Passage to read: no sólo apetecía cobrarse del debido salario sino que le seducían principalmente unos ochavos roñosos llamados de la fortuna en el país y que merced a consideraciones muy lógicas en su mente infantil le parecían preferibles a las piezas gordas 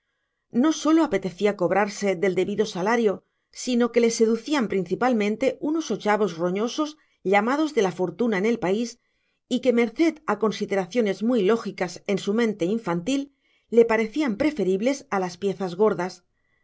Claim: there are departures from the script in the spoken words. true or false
false